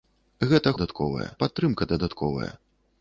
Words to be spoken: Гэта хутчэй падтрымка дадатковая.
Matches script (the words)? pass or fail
fail